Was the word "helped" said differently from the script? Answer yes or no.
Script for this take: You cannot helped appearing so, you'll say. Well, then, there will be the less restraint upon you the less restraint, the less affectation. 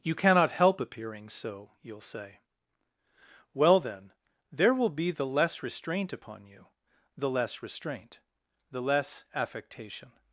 yes